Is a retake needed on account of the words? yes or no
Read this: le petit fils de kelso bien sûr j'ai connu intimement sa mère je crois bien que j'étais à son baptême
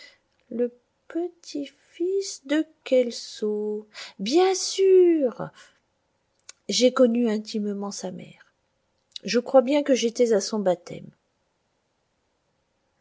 no